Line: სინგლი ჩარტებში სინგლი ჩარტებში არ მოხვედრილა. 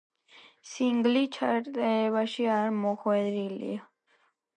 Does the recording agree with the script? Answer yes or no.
no